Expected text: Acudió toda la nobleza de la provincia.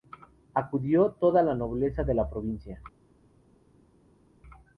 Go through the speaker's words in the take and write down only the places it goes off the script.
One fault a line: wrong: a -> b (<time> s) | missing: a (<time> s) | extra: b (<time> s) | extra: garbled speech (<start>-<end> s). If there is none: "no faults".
no faults